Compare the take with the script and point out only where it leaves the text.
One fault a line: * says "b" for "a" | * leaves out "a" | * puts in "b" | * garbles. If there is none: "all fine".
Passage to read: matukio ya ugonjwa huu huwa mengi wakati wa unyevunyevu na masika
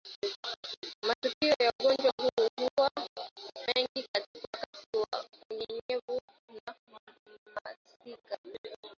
all fine